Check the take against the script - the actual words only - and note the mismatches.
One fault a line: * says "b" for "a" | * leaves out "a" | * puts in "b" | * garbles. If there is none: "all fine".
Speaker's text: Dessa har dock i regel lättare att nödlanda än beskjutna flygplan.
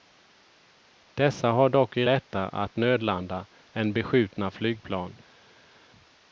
* leaves out "regel"